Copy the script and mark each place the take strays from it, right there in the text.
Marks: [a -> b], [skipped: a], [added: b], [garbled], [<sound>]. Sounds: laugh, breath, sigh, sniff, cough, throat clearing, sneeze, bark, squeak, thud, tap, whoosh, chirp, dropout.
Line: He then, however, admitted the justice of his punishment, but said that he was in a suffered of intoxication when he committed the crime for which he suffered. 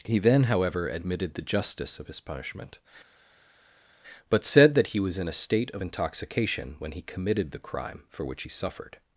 He then, however, admitted the justice of his punishment, but said that he was in a [suffered -> state] of intoxication when he committed the crime for which he suffered.